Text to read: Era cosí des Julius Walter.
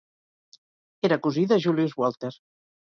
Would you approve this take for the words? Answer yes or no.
no